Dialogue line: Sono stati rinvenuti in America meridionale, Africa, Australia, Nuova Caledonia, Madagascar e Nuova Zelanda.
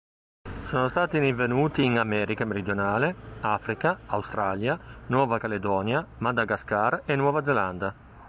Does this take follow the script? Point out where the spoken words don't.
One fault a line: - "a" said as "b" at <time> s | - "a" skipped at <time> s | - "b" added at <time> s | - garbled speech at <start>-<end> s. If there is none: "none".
none